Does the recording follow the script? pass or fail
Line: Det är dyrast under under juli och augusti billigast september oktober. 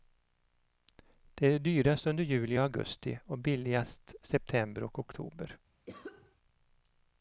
fail